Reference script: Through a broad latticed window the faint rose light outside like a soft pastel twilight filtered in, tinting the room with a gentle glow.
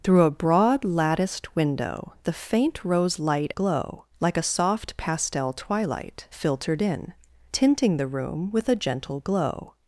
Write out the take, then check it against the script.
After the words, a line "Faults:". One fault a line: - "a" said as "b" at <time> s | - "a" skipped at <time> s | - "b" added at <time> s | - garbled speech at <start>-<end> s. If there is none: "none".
Through a broad latticed window the faint rose light glow like a soft pastel twilight filtered in, tinting the room with a gentle glow.
Faults:
- "outside" said as "glow" at 3.5 s